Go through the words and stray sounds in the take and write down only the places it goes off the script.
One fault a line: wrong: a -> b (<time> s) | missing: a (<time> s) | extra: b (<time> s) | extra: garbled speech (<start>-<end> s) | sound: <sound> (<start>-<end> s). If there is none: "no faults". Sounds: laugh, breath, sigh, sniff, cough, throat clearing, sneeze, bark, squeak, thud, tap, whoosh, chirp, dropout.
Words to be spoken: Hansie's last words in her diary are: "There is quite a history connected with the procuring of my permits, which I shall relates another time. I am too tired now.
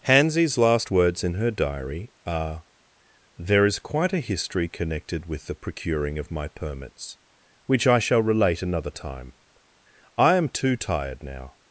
wrong: relates -> relate (8.2 s)